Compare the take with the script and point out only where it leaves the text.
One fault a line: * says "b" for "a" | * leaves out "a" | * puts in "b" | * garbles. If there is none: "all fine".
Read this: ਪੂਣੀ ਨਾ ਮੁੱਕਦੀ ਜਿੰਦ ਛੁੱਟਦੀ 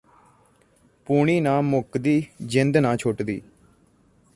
* puts in "ਨਾ"